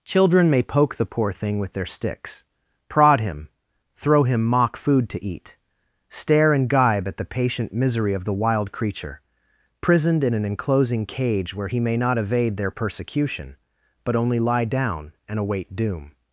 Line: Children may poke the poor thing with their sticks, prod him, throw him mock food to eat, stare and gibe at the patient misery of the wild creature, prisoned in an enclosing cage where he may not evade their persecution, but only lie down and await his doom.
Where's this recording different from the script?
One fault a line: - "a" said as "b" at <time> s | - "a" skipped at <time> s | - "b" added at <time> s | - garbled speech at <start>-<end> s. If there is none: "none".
- "his" skipped at 15.7 s